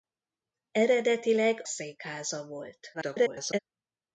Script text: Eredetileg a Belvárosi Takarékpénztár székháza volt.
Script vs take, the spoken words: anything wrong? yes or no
yes